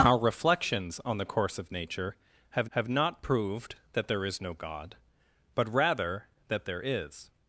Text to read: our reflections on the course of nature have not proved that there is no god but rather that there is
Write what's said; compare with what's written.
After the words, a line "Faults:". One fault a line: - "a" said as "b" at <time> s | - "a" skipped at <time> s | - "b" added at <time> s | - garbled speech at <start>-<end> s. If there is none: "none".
our reflections on the course of nature have have not proved that there is no god but rather that there is
Faults:
- "have" added at 2.7 s